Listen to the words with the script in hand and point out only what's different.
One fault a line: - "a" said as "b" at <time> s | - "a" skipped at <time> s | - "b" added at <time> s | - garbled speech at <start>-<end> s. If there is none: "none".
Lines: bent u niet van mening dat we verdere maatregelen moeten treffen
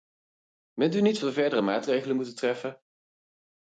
- "van mening dat" skipped at 1.2 s